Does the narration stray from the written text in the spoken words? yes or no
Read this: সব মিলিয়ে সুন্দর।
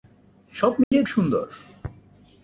no